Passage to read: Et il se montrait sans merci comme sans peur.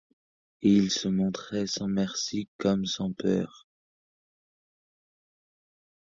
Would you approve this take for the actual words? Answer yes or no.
yes